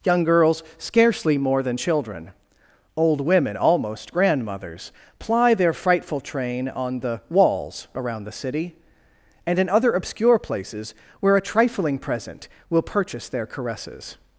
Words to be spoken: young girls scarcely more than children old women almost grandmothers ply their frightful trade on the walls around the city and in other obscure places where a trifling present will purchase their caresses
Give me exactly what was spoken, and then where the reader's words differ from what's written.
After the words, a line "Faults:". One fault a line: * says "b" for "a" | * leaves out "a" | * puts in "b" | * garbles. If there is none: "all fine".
young girls scarcely more than children old women almost grandmothers ply their frightful train on the walls around the city and in other obscure places where a trifling present will purchase their caresses
Faults:
* says "train" for "trade"